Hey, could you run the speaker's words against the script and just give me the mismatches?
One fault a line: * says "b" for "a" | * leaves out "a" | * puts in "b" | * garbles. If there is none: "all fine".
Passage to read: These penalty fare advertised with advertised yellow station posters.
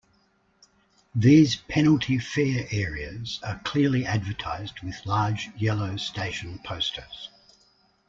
* puts in "areas are clearly"
* says "large" for "advertised"